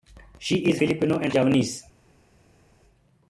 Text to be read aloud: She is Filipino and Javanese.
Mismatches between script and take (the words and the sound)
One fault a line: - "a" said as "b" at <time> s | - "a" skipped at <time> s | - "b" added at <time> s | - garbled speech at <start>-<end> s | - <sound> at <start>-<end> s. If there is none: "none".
none